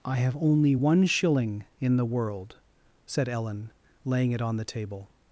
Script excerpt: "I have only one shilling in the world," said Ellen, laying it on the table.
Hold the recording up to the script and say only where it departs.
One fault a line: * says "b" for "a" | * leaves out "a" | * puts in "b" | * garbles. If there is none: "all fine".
all fine